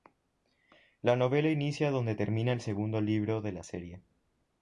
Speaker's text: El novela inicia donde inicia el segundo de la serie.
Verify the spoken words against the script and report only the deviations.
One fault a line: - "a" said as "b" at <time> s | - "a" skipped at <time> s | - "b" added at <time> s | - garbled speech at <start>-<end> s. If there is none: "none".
- "El" said as "La" at 1.0 s
- "inicia" said as "termina" at 2.1 s
- "libro" added at 3.0 s